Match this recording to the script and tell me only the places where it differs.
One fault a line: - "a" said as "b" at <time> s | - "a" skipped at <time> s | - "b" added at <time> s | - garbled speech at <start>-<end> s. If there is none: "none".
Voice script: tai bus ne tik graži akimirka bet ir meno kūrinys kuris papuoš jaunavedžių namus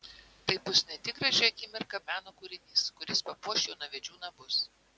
- "bet" skipped at 2.0 s